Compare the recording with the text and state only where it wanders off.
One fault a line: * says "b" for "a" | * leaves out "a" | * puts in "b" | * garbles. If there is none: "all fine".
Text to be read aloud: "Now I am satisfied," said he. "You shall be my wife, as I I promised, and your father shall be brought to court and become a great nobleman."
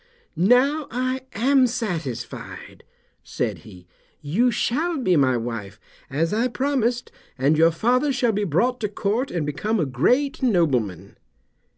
* leaves out "I"